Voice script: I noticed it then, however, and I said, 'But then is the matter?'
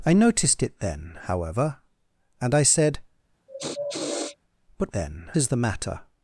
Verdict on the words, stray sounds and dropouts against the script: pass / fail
fail